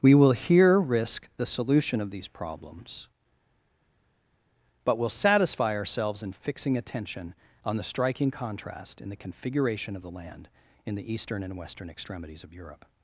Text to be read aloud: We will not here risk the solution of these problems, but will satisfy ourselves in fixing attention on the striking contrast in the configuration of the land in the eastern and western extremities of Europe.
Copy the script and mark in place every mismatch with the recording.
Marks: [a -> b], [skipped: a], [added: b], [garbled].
We will [skipped: not] here risk the solution of these problems, but will satisfy ourselves in fixing attention on the striking contrast in the configuration of the land in the eastern and western extremities of Europe.